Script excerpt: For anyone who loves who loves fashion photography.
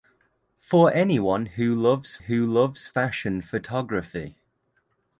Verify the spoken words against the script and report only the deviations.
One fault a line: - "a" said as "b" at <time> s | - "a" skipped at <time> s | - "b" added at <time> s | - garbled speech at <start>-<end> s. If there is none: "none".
none